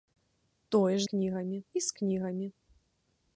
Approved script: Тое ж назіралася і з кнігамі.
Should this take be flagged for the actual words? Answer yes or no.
yes